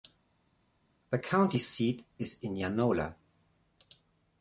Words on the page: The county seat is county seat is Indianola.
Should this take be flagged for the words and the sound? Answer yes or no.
yes